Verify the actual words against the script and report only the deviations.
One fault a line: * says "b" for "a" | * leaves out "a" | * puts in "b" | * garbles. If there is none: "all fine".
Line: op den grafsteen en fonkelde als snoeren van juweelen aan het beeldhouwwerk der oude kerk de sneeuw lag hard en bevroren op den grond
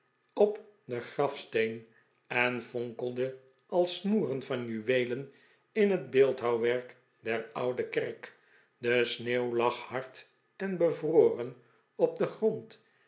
* says "in" for "aan"